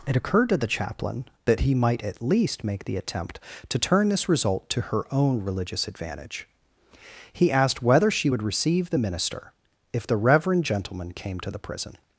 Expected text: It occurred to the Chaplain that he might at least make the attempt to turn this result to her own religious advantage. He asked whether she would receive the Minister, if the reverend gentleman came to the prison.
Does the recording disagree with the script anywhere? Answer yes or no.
no